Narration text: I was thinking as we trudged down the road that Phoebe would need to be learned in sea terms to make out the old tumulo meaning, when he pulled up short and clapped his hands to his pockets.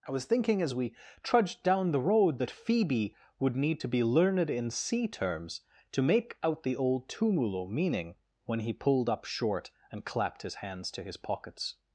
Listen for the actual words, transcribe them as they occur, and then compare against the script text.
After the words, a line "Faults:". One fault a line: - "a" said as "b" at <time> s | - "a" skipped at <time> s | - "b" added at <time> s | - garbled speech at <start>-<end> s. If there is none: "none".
I was thinking as we trudged down the road that Phoebe would need to be learned in sea terms to make out the old tumulo meaning, when he pulled up short and clapped his hands to his pockets.
Faults:
none